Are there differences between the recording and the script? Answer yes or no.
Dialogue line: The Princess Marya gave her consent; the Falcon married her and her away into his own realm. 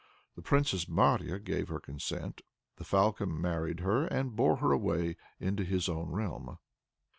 yes